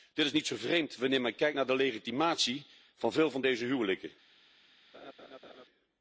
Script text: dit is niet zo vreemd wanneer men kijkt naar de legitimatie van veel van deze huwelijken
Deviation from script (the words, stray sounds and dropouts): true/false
true